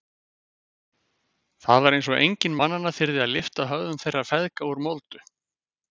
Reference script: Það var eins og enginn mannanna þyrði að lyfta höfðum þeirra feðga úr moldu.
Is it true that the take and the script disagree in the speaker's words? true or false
false